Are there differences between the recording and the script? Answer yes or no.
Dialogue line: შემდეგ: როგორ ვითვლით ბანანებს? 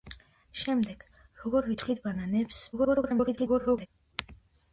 yes